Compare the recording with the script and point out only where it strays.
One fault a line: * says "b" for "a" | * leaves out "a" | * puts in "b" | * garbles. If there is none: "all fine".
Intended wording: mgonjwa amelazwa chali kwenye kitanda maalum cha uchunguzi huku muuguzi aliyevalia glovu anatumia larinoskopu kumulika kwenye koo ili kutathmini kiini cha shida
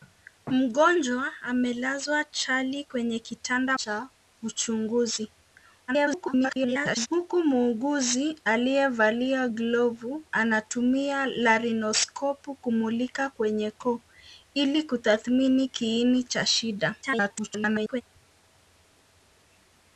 * leaves out "maalum"
* garbles
* garbles